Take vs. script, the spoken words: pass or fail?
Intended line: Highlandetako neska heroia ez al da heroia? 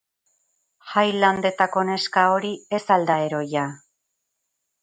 fail